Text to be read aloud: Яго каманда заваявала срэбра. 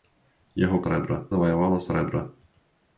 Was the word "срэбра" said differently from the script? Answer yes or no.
no